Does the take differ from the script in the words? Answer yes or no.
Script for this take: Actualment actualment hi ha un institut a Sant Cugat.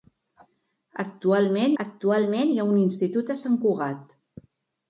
no